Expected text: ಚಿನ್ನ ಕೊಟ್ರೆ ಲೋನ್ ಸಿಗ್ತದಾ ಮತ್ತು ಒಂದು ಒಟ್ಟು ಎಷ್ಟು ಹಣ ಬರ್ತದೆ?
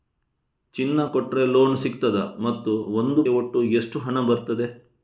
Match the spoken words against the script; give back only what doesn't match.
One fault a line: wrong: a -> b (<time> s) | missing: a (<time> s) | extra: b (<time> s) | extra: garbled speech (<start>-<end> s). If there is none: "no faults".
no faults